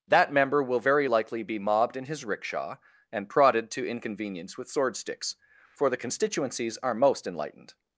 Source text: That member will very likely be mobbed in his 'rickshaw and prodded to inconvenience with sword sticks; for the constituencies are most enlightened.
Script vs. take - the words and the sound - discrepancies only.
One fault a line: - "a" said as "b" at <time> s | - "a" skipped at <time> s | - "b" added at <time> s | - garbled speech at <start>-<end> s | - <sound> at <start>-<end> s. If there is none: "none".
none